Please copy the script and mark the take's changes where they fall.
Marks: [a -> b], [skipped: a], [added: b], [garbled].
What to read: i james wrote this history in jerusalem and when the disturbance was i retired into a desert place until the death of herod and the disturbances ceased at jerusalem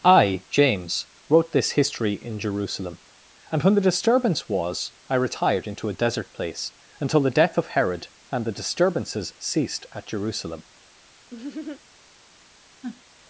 i james wrote this history in jerusalem and when the disturbance was i retired into a desert place until the death of herod and the disturbances ceased at jerusalem